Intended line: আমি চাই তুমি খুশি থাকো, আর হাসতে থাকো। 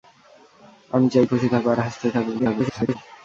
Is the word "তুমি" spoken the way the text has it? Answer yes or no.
no